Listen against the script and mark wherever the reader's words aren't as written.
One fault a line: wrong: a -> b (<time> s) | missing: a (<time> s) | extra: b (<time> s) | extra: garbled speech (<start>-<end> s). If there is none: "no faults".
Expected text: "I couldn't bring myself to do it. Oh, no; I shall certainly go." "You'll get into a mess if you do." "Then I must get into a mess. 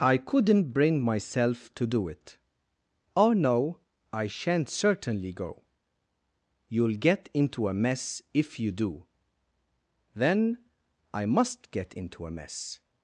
wrong: shall -> shan't (4.2 s)